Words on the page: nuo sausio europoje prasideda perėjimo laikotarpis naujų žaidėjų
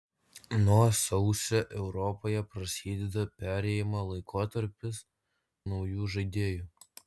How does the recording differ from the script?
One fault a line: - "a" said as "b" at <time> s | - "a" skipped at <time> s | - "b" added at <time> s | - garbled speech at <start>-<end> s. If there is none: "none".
none